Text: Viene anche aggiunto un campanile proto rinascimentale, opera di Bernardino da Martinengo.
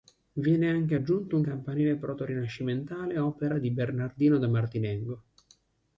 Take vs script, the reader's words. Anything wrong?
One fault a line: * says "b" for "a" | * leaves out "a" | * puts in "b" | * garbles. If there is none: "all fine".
all fine